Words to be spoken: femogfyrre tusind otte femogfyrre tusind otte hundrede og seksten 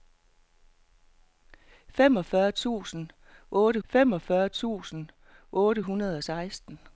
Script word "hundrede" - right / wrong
right